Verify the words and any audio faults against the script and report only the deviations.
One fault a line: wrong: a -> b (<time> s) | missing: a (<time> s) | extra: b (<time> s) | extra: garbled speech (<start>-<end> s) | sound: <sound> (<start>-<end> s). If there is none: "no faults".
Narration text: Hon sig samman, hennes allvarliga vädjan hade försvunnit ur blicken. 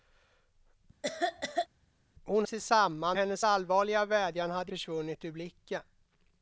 sound: cough (1.0-1.7 s)